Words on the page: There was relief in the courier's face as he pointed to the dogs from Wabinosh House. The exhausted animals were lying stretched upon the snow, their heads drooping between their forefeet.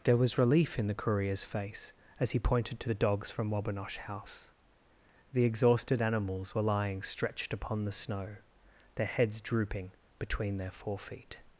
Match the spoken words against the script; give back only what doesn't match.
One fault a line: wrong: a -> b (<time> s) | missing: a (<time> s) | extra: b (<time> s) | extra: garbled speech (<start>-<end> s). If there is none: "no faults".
no faults